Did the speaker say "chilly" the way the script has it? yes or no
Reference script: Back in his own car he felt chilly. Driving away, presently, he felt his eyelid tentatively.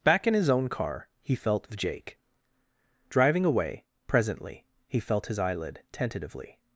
no